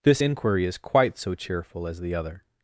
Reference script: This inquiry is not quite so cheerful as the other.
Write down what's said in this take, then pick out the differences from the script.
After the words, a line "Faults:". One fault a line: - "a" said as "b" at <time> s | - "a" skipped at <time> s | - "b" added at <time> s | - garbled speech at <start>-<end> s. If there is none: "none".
This inquiry is quite so cheerful as the other.
Faults:
- "not" skipped at 0.8 s